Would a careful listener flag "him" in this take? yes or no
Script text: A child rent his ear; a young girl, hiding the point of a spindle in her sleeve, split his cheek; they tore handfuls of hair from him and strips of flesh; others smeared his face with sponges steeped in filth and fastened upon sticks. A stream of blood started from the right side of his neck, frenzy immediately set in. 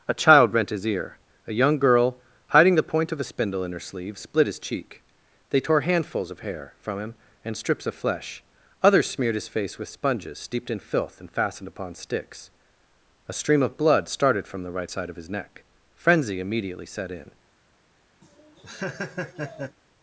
no